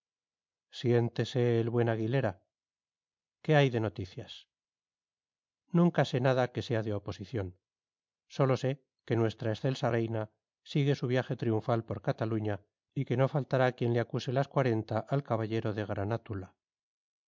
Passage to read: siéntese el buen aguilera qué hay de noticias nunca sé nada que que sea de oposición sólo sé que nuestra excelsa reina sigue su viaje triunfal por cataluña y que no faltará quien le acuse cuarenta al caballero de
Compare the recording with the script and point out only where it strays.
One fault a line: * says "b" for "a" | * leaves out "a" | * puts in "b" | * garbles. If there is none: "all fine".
* leaves out "que"
* puts in "las"